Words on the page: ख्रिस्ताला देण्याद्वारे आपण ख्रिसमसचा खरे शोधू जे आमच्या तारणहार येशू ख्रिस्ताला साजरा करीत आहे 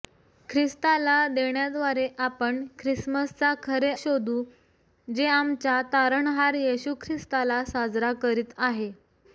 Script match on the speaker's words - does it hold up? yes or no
yes